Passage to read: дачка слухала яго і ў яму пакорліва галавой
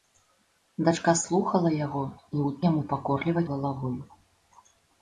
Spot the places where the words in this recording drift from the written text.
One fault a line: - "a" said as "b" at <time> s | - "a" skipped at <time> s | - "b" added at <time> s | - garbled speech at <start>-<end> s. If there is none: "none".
none